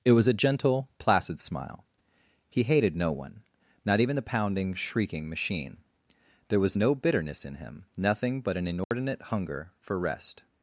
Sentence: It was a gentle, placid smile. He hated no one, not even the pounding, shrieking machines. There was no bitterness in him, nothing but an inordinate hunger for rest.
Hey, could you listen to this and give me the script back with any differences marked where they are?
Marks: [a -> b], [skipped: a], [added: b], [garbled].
It was a gentle, placid smile. He hated no one, not even the pounding, shrieking [machines. -> machine] There was no bitterness in him, nothing but an inordinate hunger for rest.